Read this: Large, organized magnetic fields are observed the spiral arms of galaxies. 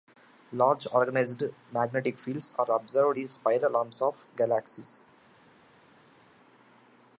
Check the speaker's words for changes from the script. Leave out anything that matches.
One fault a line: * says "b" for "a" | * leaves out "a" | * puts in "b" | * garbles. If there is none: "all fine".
all fine